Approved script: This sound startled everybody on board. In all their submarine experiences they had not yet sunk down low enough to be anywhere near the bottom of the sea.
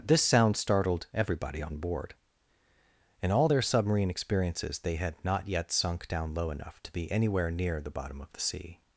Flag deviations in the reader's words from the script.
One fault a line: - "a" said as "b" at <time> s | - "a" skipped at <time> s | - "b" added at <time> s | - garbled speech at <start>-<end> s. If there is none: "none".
none